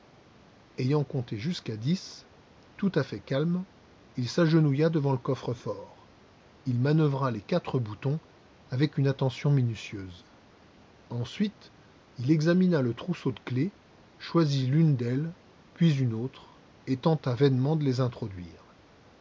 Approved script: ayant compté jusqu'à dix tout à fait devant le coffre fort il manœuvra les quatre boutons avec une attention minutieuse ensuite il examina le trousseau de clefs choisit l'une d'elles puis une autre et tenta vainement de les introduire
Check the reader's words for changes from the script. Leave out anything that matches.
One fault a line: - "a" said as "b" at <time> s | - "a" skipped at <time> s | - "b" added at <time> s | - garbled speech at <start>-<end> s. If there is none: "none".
- "calme il s'agenouilla" added at 3.2 s